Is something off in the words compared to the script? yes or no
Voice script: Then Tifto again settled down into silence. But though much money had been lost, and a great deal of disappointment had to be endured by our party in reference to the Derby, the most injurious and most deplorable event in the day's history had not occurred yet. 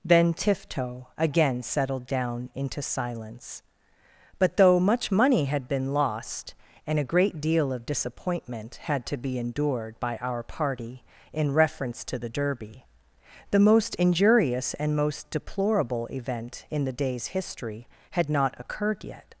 no